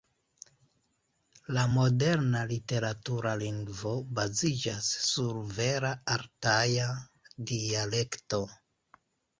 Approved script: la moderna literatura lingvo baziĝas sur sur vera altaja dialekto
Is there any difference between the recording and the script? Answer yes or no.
yes